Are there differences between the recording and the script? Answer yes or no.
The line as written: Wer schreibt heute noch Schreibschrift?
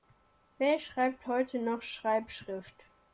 no